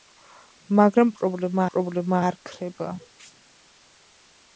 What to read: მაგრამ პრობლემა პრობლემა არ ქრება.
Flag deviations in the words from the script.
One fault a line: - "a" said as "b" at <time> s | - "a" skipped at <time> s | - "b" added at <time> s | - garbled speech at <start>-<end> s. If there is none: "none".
none